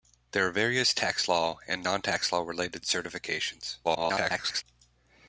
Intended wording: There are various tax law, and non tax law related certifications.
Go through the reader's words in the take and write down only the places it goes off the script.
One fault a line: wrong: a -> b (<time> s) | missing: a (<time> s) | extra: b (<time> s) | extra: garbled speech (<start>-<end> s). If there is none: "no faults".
extra: garbled speech (3.8-4.6 s)